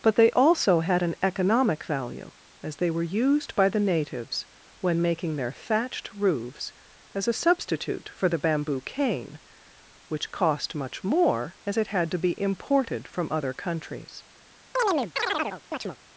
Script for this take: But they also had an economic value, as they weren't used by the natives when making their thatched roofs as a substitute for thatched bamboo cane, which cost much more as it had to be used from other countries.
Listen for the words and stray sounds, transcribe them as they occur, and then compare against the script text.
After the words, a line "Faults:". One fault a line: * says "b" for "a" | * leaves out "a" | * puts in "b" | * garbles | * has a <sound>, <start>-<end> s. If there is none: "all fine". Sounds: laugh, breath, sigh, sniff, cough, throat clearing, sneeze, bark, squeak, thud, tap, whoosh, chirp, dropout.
But they also had an economic value, as they were used by the natives when making their thatched roofs as a substitute for the bamboo cane, which cost much more as it had to be imported from other countries.
Faults:
* says "were" for "weren't"
* says "the" for "thatched"
* says "imported" for "used"
* has a chirp, 14.8-16.0 s